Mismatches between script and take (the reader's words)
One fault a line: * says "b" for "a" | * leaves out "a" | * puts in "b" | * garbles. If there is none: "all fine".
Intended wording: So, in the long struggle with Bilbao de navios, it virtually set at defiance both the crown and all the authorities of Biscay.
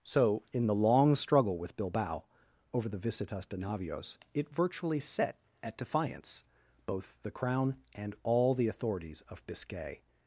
* puts in "over the visitas"